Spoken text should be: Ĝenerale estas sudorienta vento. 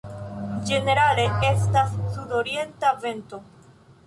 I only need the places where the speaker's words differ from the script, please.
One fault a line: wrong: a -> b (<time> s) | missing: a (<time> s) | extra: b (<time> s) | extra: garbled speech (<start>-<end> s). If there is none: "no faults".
no faults